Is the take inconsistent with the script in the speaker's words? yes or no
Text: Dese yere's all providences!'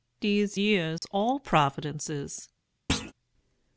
no